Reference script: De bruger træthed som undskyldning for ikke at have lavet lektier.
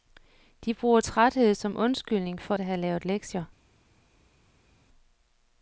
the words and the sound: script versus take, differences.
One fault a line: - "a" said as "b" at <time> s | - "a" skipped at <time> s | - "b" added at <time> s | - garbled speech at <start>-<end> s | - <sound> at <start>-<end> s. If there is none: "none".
- "ikke" skipped at 2.6 s